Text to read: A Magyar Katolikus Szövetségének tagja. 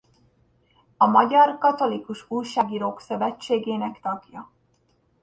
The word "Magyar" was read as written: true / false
true